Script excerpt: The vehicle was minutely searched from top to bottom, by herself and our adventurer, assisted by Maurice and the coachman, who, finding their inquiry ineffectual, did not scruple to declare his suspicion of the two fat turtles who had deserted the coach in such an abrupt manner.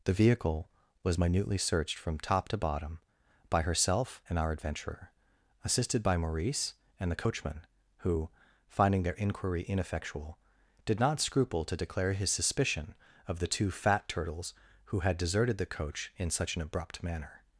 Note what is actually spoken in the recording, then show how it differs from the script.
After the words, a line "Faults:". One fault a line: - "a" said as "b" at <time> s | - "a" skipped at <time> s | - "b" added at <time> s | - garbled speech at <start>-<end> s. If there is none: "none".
The vehicle was minutely searched from top to bottom, by herself and our adventurer, assisted by Maurice and the coachman, who, finding their inquiry ineffectual, did not scruple to declare his suspicion of the two fat turtles who had deserted the coach in such an abrupt manner.
Faults:
none